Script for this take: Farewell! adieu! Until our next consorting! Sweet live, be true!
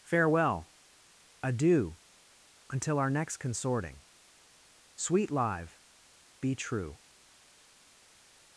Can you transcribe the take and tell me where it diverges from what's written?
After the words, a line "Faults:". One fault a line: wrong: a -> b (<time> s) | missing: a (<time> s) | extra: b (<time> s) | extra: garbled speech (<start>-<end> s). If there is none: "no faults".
Farewell! adieu! Until our next consorting! Sweet live, be true!
Faults:
no faults